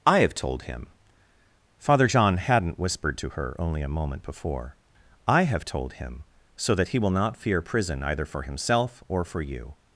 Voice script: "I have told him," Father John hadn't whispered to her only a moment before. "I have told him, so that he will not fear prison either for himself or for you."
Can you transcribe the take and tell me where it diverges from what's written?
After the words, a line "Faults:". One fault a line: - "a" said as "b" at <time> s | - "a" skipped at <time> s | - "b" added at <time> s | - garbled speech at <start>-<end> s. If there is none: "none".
"I have told him," Father John hadn't whispered to her only a moment before. "I have told him, so that he will not fear prison either for himself or for you."
Faults:
none